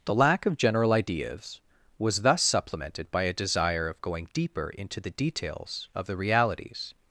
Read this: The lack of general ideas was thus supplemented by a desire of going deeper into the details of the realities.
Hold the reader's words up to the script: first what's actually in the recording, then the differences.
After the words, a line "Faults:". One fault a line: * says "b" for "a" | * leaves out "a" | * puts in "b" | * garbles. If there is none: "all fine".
The lack of general ideas was thus supplemented by a desire of going deeper into the details of the realities.
Faults:
all fine